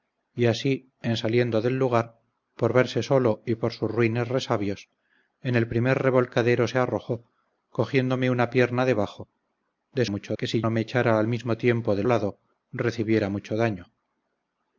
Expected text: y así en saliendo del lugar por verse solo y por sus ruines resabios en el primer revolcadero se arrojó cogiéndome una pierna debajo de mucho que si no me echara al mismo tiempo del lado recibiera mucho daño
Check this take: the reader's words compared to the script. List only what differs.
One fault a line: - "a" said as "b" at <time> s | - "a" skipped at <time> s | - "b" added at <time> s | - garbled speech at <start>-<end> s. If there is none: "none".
none